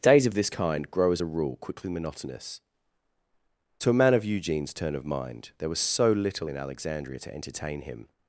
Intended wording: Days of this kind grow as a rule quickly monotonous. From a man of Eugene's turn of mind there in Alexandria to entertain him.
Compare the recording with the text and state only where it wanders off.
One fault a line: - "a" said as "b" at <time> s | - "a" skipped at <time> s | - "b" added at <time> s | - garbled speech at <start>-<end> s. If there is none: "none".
- "From" said as "To" at 3.8 s
- "was so little" added at 5.7 s